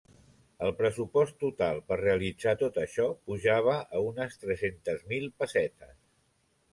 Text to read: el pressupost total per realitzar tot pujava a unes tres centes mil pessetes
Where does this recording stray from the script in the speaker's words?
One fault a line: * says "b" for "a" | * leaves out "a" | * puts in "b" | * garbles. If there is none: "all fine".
* puts in "això"